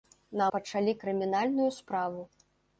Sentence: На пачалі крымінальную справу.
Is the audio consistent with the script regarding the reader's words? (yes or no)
yes